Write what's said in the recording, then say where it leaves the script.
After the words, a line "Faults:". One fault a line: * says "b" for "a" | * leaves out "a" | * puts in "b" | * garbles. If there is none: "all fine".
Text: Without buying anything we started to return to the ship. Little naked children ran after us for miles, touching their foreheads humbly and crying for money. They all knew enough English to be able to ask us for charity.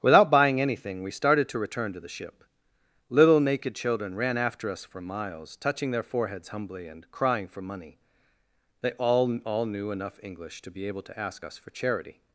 Without buying anything we started to return to the ship. Little naked children ran after us for miles, touching their foreheads humbly and crying for money. They all all knew enough English to be able to ask us for charity.
Faults:
* puts in "all"